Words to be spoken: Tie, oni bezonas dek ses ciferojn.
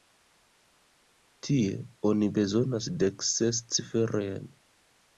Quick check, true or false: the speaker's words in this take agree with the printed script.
true